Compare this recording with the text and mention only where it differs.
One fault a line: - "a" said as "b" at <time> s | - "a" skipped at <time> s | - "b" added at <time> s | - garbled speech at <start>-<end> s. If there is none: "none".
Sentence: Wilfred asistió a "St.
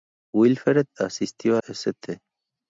none